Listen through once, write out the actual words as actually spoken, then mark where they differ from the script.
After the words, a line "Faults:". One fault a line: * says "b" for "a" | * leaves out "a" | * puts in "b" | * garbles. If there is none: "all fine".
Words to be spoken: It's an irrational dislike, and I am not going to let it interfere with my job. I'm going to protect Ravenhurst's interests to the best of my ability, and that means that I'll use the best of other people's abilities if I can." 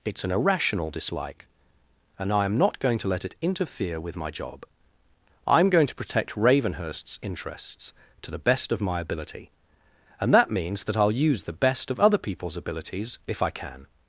It's an irrational dislike, and I am not going to let it interfere with my job. I'm going to protect Ravenhurst's interests to the best of my ability, and that means that I'll use the best of other people's abilities if I can."
Faults:
all fine